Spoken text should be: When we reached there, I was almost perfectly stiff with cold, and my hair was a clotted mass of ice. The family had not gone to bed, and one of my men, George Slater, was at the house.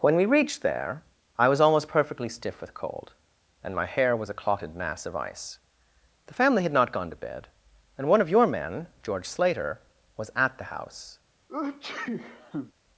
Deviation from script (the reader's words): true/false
true